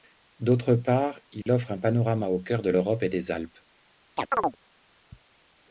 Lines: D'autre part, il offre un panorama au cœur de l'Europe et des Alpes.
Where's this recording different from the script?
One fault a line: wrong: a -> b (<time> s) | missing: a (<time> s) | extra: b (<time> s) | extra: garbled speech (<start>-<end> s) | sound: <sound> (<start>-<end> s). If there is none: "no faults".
sound: dropout (1.4-1.5 s)
sound: chirp (4.2-4.6 s)